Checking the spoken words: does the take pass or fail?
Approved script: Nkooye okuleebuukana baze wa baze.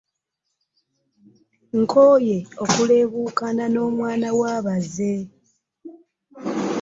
fail